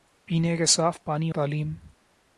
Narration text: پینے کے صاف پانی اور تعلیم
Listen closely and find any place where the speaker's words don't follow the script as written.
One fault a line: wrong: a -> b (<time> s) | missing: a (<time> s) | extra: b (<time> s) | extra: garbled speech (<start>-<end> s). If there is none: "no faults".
missing: اور (1.3 s)